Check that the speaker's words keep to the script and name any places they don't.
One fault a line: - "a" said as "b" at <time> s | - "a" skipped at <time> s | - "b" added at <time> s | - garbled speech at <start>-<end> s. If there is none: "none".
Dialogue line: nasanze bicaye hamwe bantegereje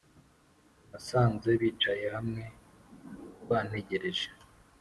none